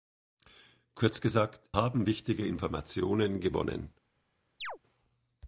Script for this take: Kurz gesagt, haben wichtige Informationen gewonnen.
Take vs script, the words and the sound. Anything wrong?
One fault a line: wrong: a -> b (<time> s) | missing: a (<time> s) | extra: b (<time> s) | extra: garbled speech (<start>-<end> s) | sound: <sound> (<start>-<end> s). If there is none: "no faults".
sound: chirp (4.6-4.8 s)